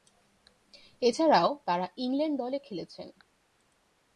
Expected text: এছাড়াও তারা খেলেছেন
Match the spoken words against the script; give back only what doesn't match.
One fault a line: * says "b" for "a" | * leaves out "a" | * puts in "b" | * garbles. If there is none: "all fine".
* puts in "ইংল্যান্ড দলে"